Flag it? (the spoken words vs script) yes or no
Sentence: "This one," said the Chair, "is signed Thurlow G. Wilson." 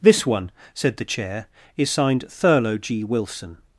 no